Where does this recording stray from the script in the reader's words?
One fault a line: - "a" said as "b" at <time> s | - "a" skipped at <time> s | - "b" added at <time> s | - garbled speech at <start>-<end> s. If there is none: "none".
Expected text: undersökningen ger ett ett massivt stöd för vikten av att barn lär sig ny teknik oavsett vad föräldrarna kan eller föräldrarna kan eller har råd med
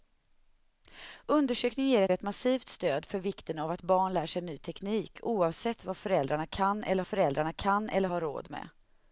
none